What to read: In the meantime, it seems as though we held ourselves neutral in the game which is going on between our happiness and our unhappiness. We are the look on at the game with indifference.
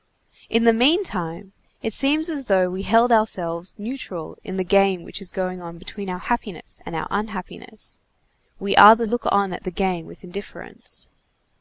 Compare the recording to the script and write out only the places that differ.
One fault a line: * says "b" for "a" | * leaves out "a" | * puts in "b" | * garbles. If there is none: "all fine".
all fine